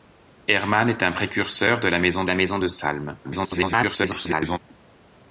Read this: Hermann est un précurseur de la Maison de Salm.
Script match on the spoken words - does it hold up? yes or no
no